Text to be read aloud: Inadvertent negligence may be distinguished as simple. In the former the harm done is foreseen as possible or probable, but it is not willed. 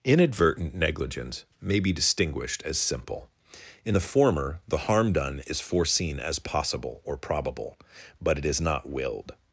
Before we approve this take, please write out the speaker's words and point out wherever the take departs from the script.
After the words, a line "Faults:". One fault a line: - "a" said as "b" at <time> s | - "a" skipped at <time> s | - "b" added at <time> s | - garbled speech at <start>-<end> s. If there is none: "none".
Inadvertent negligence may be distinguished as simple. In the former the harm done is foreseen as possible or probable, but it is not willed.
Faults:
none